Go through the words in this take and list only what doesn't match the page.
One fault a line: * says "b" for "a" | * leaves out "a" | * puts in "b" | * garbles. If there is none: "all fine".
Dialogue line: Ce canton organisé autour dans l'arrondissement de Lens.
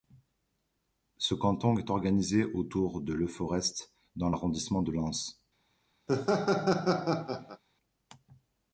* puts in "est"
* puts in "de Leforest"